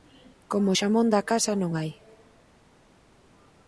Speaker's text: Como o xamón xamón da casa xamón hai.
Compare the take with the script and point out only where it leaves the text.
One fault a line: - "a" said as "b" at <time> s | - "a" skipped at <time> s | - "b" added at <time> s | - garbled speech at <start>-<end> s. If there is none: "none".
- "xamón" skipped at 1.1 s
- "xamón" said as "non" at 1.6 s